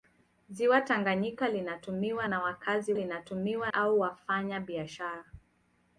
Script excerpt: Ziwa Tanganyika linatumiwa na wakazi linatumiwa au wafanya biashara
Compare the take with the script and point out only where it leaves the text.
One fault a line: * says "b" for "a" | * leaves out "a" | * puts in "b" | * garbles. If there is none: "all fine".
all fine